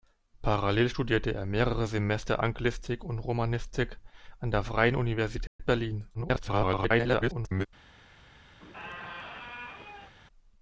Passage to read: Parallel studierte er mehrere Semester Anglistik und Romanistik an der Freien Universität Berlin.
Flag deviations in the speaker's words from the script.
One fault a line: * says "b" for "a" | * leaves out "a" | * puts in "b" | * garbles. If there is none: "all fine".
* garbles